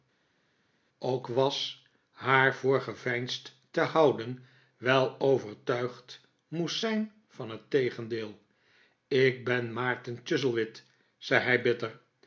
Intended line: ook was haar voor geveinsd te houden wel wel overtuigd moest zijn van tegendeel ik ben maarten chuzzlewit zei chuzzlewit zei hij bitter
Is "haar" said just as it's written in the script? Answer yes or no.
yes